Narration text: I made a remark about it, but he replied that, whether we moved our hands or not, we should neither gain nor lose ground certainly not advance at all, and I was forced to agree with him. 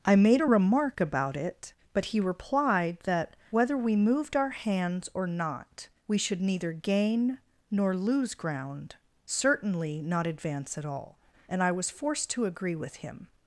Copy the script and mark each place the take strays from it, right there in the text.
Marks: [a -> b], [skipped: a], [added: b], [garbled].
I made a remark about it, but he replied that, whether we moved our hands or not, we should neither gain nor lose ground certainly not advance at all, and I was forced to agree with him.